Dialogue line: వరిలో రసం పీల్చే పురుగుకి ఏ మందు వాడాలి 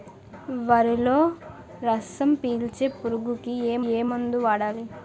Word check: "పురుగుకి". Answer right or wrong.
right